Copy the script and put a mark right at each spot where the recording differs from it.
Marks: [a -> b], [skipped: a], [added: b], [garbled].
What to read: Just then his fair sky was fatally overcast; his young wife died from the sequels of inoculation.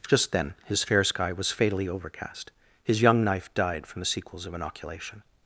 Just then his fair sky was fatally overcast; his young [wife -> knife] died from the sequels of inoculation.